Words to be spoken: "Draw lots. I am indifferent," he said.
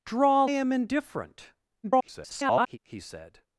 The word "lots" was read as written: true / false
false